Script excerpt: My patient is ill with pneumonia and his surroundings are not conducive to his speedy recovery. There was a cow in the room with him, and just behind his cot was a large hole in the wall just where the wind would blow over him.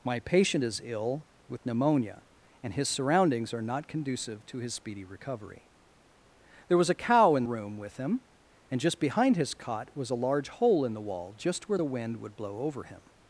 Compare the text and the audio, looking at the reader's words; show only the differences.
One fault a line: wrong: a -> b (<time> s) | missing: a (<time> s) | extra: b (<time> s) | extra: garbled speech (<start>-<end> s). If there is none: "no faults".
missing: the (7.4 s)